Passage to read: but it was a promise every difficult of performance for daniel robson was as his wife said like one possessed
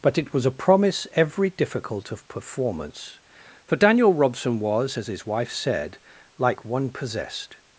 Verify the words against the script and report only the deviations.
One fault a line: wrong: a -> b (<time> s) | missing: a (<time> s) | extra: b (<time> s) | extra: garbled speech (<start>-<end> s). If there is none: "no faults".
no faults